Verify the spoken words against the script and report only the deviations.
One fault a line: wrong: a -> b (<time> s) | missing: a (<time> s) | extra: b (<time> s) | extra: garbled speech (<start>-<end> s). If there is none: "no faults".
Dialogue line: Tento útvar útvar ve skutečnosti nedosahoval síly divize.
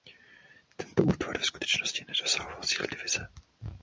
missing: útvar (1.4 s)